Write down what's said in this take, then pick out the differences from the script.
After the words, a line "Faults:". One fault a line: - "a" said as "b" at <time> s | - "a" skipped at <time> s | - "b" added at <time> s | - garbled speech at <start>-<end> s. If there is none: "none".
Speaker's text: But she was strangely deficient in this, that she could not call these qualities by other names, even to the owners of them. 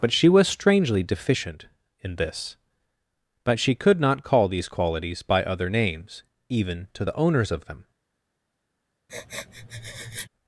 But she was strangely deficient in this, but she could not call these qualities by other names, even to the owners of them.
Faults:
- "that" said as "but" at 3.4 s